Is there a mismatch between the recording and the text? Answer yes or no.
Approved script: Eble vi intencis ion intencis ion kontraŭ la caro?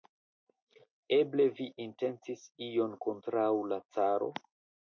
yes